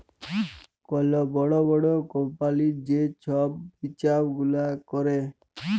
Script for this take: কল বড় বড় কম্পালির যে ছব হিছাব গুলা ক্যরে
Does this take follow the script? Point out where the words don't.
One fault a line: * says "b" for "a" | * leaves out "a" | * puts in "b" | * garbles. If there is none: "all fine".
all fine